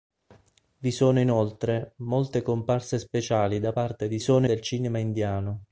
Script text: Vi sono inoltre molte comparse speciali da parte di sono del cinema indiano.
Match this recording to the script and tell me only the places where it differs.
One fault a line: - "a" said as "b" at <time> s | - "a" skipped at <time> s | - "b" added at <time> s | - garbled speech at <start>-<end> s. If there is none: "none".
none